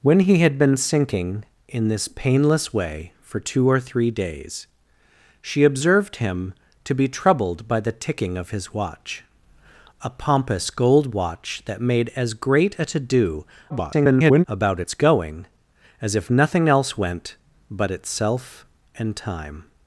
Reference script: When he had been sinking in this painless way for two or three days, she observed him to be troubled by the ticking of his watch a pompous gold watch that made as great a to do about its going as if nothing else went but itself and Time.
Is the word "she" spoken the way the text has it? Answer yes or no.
yes